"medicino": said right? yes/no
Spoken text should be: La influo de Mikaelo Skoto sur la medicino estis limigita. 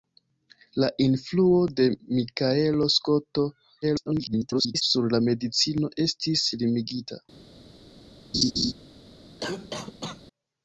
yes